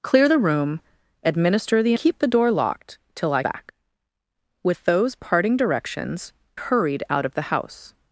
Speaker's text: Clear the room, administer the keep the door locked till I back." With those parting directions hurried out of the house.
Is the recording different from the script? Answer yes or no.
no